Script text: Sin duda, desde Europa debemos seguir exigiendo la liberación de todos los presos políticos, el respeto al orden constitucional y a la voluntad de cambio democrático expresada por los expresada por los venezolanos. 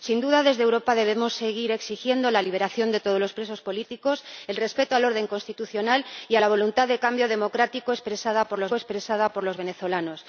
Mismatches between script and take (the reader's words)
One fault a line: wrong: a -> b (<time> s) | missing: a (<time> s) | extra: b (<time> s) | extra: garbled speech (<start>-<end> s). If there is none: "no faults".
no faults